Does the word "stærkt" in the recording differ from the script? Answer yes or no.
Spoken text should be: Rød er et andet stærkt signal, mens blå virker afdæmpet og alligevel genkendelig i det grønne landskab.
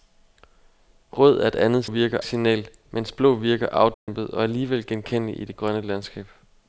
yes